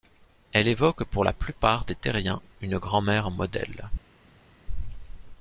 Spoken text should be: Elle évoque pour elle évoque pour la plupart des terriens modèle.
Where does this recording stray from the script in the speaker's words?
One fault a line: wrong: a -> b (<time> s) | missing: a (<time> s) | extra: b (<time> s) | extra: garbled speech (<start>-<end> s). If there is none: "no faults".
missing: elle évoque pour (1.2 s)
extra: une grand mère (2.6 s)